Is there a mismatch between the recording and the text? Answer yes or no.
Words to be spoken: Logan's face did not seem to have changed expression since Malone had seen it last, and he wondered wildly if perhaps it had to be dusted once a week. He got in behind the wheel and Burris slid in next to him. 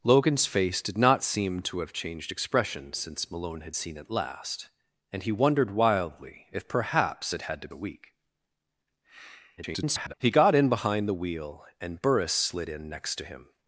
yes